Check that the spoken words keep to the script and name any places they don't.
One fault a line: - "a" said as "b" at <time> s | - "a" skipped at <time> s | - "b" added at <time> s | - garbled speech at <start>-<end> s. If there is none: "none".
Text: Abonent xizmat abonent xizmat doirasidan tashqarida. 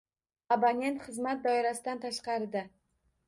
- "abonent xizmat" skipped at 1.4 s